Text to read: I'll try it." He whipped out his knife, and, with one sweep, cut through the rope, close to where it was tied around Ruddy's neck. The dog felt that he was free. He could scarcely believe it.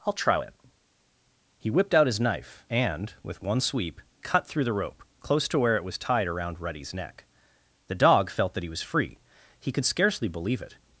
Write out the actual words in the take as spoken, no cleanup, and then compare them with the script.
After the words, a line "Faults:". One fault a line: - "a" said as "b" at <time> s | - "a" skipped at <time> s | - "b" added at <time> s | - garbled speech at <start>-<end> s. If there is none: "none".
I'll try it." He whipped out his knife, and, with one sweep, cut through the rope, close to where it was tied around Ruddy's neck. The dog felt that he was free. He could scarcely believe it.
Faults:
none